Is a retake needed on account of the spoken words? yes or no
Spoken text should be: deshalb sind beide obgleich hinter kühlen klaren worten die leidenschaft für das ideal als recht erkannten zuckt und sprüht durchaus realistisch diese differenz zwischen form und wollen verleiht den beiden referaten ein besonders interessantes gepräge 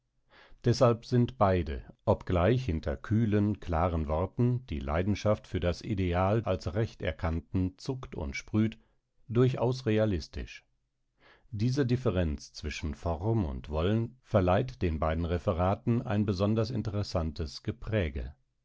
no